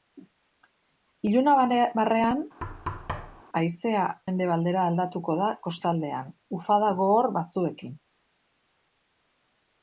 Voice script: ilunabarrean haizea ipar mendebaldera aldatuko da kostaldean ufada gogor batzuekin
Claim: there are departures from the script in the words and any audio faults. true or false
true